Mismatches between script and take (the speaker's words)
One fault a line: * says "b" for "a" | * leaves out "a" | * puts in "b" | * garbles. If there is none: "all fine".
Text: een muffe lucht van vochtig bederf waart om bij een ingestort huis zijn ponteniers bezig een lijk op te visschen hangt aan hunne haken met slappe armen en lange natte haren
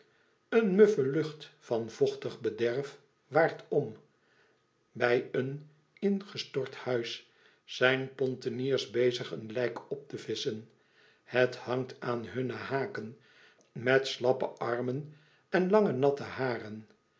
* puts in "het"